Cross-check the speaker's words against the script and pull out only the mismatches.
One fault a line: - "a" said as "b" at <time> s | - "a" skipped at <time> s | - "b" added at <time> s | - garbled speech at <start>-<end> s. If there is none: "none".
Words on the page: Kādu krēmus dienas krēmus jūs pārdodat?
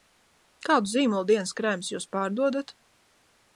- "krēmus" said as "zīmolu" at 0.9 s